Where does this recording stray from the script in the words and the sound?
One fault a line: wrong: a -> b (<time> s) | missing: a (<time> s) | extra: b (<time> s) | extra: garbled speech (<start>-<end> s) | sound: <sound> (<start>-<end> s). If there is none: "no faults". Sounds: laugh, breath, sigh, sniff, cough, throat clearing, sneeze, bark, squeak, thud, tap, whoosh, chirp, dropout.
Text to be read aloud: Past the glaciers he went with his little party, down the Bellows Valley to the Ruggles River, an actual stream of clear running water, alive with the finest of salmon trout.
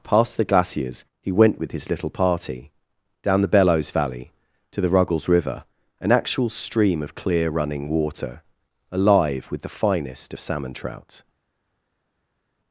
no faults